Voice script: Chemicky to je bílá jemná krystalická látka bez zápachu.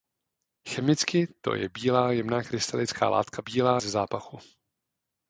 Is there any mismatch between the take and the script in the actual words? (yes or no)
yes